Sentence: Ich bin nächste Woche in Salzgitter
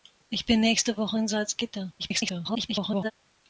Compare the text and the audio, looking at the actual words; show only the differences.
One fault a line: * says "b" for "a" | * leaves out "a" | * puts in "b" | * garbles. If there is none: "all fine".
* garbles